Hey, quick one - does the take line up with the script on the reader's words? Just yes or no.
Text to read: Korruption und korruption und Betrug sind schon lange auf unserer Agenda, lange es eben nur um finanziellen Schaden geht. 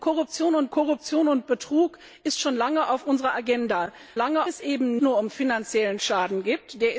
yes